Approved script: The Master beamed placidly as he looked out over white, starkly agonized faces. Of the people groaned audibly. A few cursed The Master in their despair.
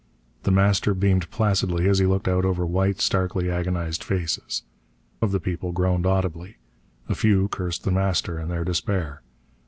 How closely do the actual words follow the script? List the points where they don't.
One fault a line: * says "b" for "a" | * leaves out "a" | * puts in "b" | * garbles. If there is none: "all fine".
all fine